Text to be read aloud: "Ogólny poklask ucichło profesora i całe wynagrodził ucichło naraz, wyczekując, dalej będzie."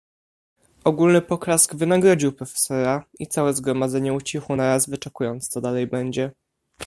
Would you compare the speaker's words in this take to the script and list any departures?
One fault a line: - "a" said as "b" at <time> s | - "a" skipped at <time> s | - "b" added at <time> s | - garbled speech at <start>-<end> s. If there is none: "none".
- "ucichło" said as "wynagrodził" at 1.8 s
- "wynagrodził" said as "zgromadzenie" at 3.5 s
- "co" added at 5.5 s